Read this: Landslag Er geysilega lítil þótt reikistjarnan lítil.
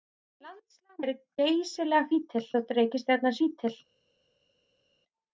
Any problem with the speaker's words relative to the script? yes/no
no